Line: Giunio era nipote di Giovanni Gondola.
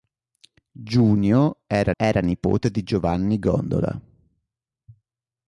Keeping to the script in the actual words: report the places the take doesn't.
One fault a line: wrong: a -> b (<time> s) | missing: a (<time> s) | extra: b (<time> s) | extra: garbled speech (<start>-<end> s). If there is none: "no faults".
extra: era (2.0 s)